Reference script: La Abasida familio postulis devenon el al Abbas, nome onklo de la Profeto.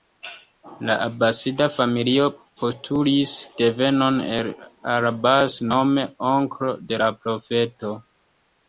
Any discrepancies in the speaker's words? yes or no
no